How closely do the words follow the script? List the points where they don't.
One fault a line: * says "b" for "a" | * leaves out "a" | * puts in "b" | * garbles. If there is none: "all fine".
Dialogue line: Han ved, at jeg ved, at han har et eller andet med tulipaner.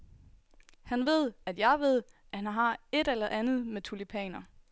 all fine